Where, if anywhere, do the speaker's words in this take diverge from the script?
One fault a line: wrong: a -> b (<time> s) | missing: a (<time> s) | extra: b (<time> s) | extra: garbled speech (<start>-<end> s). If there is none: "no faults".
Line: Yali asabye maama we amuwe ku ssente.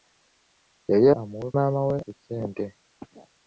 wrong: asabye -> amuwe (1.2 s)
missing: amuwe (2.0 s)